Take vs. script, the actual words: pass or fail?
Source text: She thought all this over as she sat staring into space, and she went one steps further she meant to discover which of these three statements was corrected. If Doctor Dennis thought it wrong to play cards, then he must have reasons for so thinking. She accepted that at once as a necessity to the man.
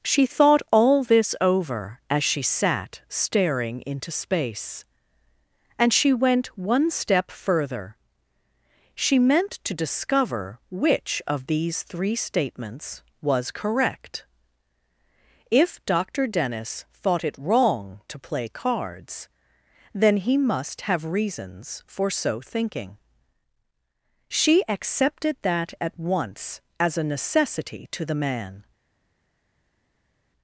fail